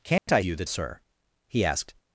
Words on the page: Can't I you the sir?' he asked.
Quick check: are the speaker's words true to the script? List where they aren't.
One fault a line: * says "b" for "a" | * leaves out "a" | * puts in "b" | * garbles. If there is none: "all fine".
all fine